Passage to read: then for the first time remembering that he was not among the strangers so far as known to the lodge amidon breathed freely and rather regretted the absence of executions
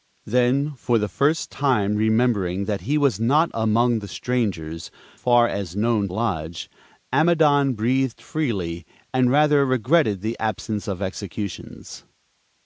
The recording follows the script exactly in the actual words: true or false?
false